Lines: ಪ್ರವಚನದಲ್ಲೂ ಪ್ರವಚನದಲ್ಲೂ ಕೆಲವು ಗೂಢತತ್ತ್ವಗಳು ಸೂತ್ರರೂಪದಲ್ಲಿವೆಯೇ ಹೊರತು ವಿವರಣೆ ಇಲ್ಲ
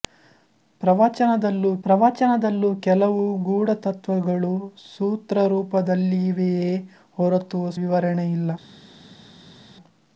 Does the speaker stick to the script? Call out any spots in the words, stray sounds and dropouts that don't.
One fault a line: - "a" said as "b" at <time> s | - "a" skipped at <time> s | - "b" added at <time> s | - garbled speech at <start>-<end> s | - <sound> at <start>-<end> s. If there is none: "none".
none